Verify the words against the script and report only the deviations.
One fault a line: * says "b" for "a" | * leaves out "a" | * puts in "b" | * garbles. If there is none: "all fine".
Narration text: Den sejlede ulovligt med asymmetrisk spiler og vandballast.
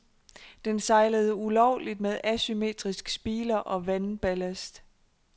all fine